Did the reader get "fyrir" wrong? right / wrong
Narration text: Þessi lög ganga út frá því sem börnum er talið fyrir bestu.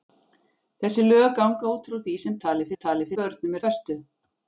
wrong